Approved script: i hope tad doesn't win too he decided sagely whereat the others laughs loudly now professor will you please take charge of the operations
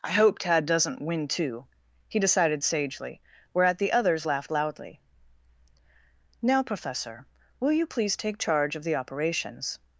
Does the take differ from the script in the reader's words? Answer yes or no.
yes